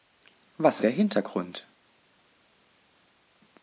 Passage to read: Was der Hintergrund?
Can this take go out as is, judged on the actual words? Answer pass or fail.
pass